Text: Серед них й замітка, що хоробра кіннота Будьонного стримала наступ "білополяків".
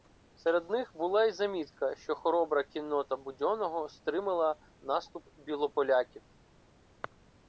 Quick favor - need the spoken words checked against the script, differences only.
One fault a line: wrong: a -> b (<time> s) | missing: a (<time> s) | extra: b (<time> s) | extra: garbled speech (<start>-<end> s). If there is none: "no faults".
extra: була (0.9 s)